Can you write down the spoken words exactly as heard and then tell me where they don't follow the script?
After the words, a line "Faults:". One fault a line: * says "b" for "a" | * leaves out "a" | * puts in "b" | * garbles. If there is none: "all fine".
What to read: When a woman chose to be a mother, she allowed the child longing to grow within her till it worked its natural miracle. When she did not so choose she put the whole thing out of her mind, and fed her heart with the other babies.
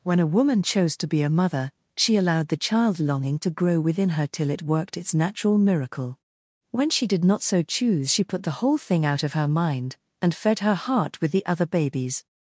When a woman chose to be a mother, she allowed the child longing to grow within her till it worked its natural miracle. When she did not so choose she put the whole thing out of her mind, and fed her heart with the other babies.
Faults:
all fine